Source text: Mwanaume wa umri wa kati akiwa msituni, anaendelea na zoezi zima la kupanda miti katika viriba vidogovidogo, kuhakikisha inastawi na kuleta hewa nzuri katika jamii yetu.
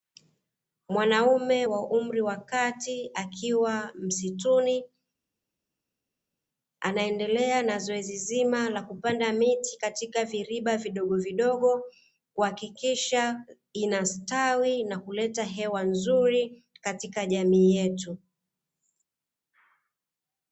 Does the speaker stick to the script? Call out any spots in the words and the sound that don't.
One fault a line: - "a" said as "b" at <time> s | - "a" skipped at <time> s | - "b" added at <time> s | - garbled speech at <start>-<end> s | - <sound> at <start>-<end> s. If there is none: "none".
none